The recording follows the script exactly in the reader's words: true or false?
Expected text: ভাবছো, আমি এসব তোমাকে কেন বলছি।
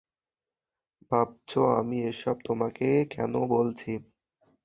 true